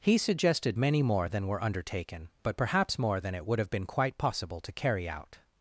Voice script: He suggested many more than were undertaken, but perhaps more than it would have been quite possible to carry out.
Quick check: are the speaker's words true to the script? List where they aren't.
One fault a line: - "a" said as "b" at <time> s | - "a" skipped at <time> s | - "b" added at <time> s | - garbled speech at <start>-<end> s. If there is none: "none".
none